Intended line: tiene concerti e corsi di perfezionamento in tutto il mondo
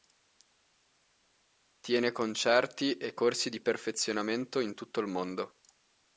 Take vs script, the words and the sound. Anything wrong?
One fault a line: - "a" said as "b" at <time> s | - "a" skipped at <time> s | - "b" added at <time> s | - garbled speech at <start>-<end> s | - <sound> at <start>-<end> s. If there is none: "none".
none